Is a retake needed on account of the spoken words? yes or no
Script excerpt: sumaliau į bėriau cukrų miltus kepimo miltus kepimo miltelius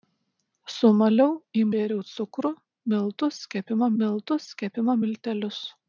no